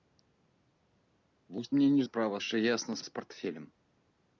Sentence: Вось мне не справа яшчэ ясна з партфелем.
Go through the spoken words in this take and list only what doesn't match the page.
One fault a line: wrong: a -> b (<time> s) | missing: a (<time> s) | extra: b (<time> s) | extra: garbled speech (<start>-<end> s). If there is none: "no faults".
no faults